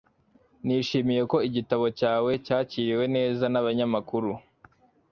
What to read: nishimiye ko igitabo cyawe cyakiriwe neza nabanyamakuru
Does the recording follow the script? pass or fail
pass